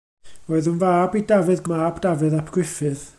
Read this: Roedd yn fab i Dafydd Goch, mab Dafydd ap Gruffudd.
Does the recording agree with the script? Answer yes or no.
no